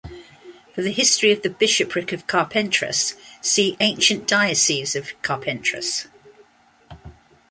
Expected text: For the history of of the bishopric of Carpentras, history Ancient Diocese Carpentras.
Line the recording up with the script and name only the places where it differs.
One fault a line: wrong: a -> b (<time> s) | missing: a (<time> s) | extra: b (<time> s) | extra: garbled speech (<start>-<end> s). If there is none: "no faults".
missing: of (1.4 s)
wrong: history -> see (3.4 s)
extra: of (5.0 s)